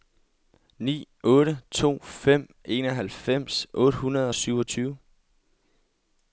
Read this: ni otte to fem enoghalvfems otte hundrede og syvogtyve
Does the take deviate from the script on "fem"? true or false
false